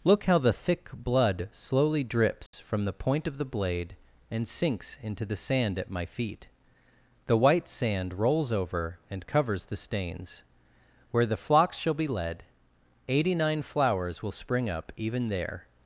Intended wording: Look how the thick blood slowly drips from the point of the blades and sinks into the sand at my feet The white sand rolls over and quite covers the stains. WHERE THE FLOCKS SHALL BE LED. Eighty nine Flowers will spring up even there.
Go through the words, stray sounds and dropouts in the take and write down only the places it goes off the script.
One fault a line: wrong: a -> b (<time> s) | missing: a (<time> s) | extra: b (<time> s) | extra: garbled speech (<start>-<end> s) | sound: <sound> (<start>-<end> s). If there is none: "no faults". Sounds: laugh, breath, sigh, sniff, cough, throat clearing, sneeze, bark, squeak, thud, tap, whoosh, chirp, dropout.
sound: dropout (2.5-2.5 s)
wrong: blades -> blade (3.5 s)
missing: quite (9.3 s)